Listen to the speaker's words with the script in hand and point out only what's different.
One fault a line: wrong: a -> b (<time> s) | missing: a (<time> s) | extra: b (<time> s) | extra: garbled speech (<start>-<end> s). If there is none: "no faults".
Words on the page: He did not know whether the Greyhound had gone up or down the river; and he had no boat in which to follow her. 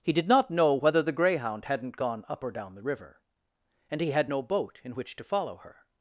wrong: had -> hadn't (1.6 s)